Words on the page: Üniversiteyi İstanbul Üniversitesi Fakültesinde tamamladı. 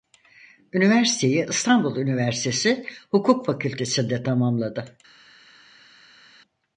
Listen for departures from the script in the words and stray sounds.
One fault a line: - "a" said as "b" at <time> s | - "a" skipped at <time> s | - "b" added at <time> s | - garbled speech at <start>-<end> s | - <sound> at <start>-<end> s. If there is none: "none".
- "Hukuk" added at 3.1 s